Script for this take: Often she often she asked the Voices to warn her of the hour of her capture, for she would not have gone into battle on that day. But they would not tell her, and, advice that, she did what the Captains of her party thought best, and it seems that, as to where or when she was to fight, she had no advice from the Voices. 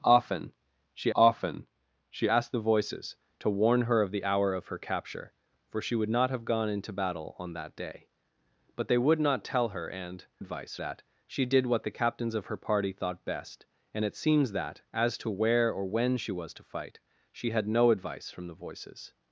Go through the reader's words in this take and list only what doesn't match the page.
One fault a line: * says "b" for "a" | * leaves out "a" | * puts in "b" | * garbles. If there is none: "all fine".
all fine